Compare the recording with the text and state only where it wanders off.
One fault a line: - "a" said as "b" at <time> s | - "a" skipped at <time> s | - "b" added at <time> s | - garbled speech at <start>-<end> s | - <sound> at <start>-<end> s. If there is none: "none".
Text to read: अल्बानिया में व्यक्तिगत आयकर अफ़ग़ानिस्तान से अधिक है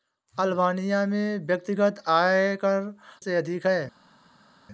- "अफ़ग़ानिस्तान" skipped at 2.9 s